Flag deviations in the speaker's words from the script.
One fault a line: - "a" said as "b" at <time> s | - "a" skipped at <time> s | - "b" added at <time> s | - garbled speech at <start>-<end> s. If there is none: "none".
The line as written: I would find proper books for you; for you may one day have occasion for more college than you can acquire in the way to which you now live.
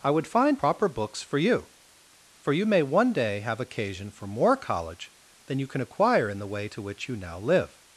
none